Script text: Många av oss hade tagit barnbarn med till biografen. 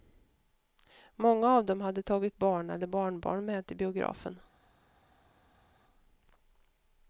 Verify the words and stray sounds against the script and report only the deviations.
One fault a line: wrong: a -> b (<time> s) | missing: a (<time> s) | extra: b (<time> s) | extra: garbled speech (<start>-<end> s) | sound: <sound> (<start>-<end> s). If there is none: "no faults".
wrong: oss -> dem (1.6 s)
extra: barn eller (2.4 s)